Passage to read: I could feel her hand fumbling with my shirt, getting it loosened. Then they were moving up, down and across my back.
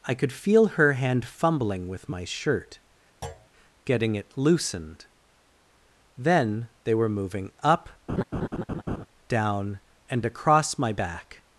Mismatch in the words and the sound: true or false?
true